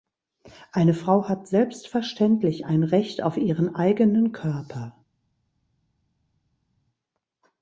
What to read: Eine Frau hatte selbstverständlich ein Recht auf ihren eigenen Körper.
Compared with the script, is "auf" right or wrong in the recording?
right